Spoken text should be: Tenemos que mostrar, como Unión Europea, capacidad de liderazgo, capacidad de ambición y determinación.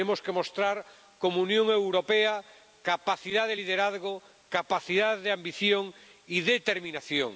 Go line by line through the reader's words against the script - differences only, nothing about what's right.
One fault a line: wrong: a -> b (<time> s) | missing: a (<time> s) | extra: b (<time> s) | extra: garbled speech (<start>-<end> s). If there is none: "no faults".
no faults